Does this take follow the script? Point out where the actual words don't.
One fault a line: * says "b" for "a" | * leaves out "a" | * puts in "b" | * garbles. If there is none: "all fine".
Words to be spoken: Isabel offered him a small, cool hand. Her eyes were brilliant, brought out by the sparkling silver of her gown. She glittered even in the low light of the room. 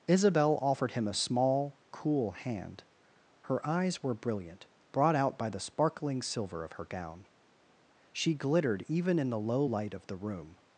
all fine